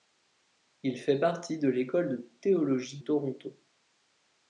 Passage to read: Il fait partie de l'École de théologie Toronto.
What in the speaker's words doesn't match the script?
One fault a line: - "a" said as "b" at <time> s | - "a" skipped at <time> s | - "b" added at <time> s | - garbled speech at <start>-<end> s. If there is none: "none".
none